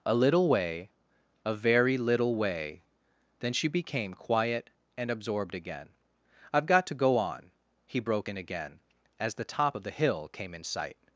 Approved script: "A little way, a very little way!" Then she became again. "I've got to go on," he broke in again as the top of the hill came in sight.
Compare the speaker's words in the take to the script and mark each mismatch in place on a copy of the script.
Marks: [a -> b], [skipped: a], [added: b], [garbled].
"A little way, a very little way!" Then she became [added: quiet and absorbed] again. "I've got to go on," he broke in again as the top of the hill came in sight.